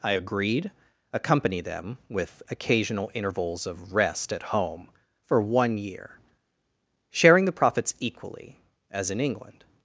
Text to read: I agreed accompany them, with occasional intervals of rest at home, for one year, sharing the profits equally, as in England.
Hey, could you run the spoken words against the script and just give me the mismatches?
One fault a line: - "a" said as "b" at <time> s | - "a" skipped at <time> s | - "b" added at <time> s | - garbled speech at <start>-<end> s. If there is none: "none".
none